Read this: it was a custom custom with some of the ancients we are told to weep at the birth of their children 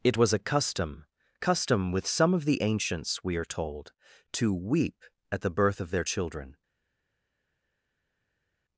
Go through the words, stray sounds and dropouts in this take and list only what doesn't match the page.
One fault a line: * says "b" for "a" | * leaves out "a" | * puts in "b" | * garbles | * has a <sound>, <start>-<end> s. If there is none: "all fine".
all fine